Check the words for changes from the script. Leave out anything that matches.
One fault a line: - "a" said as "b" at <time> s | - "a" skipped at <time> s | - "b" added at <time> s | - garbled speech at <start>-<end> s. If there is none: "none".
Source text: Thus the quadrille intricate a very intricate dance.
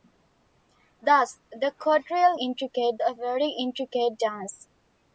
none